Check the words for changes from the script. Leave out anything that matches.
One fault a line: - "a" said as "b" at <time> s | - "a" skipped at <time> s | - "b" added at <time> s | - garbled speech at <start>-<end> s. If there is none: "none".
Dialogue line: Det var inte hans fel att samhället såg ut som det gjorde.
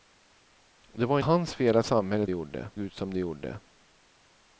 - "inte" skipped at 1.2 s
- "såg" said as "gjorde" at 2.3 s